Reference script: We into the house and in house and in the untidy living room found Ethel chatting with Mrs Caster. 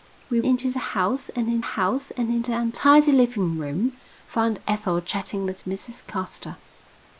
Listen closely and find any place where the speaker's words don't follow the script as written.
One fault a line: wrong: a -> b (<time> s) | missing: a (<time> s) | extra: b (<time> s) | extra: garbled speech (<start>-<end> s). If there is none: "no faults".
no faults